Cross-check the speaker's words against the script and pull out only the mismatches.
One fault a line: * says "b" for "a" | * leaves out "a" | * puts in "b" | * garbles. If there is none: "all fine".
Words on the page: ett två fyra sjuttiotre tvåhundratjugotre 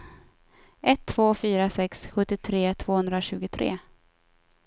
* puts in "sex"